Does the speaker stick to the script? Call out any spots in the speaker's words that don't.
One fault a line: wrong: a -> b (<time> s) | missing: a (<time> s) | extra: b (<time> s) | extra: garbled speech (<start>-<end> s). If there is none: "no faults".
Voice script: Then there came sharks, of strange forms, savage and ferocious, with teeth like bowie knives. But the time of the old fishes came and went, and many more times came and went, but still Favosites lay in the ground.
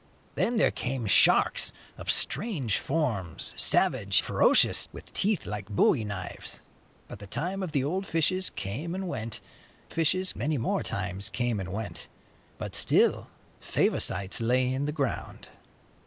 missing: and (4.2 s)
wrong: and -> fishes (9.9 s)